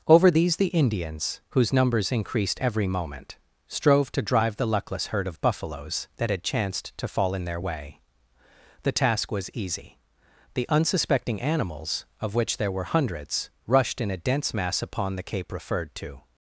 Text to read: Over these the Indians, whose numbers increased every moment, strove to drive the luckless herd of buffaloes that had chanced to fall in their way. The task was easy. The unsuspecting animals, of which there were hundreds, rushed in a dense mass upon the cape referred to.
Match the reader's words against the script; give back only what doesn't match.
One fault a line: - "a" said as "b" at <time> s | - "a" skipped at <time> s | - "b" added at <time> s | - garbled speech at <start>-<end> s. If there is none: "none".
none